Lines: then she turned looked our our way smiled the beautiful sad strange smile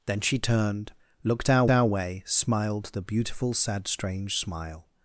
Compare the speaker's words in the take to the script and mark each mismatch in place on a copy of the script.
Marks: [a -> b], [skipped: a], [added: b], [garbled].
then she turned looked our our way smiled the beautiful sad strange smile